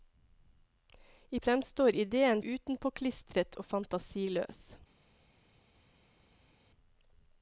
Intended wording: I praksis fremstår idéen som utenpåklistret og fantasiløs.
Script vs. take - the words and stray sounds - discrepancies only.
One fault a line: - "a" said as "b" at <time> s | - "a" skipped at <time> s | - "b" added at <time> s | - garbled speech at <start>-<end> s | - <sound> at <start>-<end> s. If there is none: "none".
- "praksis" skipped at 1.4 s
- "som" skipped at 2.4 s